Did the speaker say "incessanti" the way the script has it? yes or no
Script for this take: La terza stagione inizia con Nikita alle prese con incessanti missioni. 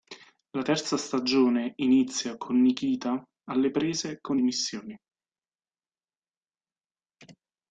no